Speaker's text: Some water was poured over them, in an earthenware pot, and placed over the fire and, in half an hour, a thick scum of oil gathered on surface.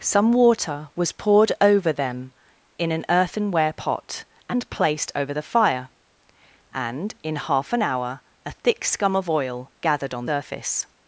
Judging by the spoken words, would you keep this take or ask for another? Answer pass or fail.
pass